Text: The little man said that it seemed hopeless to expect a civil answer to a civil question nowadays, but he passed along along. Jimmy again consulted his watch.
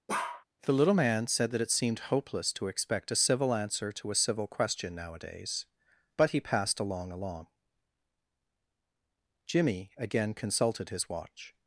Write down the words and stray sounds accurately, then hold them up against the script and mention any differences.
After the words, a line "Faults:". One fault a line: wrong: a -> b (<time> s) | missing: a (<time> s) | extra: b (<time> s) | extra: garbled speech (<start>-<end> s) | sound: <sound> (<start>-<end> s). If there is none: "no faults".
The little man said that it seemed hopeless to expect a civil answer to a civil question nowadays, but he passed along along. Jimmy again consulted his watch.
Faults:
sound: bark (0.1-0.4 s)